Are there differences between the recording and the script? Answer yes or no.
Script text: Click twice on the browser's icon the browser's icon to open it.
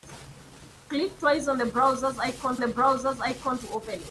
no